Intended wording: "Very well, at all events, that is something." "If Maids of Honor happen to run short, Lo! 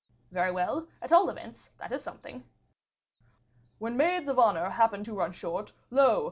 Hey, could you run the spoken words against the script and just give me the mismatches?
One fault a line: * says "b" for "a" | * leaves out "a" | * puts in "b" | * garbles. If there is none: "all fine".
* says "When" for "If"